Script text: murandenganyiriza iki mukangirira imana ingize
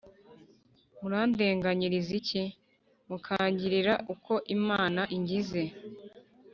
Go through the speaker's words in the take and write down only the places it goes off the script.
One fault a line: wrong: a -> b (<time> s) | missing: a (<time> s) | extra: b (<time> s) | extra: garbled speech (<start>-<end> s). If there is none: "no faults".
extra: uko (4.1 s)